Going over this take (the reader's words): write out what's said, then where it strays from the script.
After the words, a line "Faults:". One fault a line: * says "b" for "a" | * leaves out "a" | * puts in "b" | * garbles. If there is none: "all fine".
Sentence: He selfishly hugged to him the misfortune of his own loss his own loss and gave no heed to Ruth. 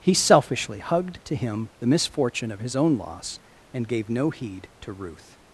He selfishly hugged to him the misfortune of his own loss and gave no heed to Ruth.
Faults:
* leaves out "his own loss"